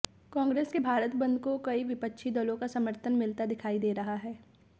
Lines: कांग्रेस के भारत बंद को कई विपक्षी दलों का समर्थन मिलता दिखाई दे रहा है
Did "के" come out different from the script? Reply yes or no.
no